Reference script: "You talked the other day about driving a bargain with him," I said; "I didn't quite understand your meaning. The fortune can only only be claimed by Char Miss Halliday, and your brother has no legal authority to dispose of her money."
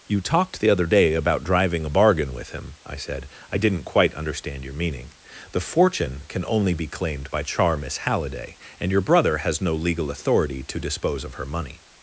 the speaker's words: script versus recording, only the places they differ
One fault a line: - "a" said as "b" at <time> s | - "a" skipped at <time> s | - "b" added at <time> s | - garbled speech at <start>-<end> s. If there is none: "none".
- "only" skipped at 6.7 s